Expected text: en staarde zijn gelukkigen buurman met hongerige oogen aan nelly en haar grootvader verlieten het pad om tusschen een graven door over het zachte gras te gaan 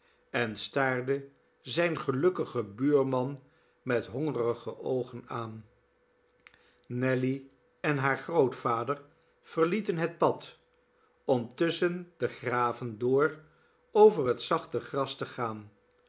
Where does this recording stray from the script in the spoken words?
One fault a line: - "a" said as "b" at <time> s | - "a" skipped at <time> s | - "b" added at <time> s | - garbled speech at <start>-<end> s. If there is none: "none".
- "een" said as "de" at 12.2 s